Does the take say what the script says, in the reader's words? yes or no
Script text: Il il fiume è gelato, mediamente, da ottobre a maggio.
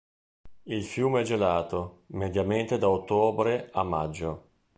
no